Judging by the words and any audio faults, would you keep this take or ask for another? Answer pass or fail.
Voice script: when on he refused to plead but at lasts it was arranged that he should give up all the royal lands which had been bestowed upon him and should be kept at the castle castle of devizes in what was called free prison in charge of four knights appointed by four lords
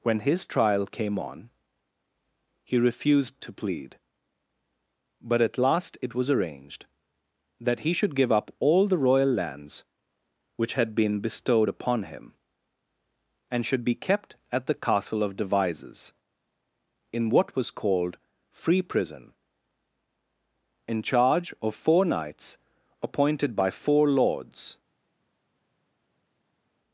fail